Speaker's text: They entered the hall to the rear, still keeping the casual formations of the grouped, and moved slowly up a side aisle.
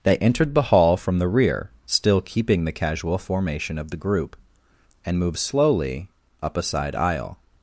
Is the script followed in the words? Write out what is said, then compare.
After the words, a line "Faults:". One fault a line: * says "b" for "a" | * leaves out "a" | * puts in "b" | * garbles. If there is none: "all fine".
They entered the hall from the rear, still keeping the casual formation of the group, and moved slowly up a side aisle.
Faults:
* says "from" for "to"
* says "formation" for "formations"
* says "group" for "grouped"